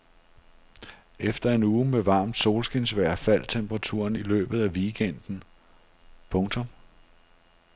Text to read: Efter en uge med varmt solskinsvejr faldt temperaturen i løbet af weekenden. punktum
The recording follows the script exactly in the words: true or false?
true